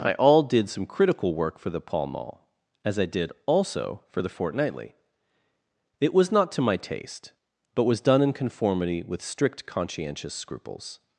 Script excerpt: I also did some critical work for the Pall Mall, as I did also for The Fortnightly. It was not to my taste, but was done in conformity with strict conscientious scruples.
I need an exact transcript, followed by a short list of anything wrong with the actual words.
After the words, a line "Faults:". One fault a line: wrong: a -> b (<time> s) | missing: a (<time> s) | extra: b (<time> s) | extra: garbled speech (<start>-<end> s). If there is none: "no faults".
I all did some critical work for the Pall Mall, as I did also for The Fortnightly. It was not to my taste, but was done in conformity with strict conscientious scruples.
Faults:
wrong: also -> all (0.1 s)